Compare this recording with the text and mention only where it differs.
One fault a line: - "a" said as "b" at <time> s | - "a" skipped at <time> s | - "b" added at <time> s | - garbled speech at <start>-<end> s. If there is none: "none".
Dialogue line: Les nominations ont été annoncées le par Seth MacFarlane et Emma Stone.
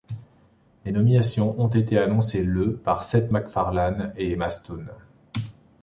none